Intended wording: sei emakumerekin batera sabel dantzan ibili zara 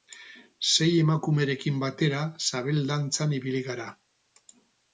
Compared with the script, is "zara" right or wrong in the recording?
wrong